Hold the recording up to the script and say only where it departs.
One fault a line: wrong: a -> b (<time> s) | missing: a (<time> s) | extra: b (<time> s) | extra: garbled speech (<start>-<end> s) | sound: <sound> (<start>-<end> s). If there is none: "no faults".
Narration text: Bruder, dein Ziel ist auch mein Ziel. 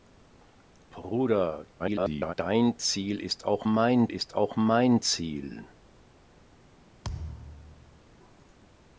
extra: garbled speech (1.8-2.3 s)
extra: ist auch mein (4.1 s)
sound: thud (7.0-8.0 s)